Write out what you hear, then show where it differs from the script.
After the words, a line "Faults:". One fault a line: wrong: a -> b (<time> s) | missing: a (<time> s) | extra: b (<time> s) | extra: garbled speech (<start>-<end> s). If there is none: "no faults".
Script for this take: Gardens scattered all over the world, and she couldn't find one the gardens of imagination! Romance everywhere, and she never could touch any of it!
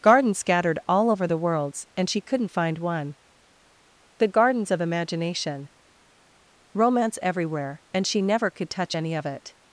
Gardens scattered all over the worlds, and she couldn't find one the gardens of imagination! Romance everywhere, and she never could touch any of it!
Faults:
wrong: world -> worlds (1.4 s)